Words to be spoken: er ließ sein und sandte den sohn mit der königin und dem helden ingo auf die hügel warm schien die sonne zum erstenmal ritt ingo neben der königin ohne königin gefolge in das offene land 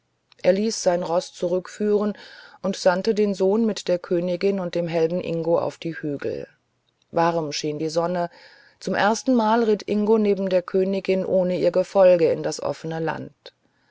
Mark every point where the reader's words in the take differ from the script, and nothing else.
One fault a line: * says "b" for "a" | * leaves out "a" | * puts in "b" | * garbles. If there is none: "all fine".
* puts in "roß zurückführen"
* says "ihr" for "königin"